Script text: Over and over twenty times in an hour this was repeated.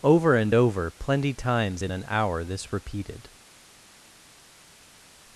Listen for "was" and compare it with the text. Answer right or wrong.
wrong